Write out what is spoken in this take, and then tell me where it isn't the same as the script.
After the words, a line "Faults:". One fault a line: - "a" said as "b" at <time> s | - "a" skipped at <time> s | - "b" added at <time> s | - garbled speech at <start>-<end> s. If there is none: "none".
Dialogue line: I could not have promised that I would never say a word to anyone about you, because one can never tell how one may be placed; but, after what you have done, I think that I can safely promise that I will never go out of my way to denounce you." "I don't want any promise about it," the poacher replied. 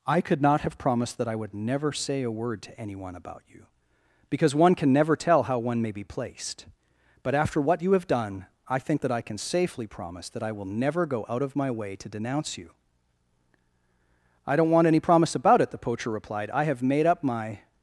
I could not have promised that I would never say a word to anyone about you, because one can never tell how one may be placed; but, after what you have done, I think that I can safely promise that I will never go out of my way to denounce you." "I don't want any promise about it," the poacher replied. "I have made up my
Faults:
- "I have made up my" added at 16.5 s